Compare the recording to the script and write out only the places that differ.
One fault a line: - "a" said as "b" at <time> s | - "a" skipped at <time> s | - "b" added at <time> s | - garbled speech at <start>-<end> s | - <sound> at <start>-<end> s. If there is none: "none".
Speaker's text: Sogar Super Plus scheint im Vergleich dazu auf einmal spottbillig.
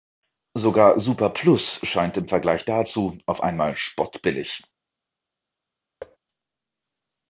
- thud at 6.0-6.2 s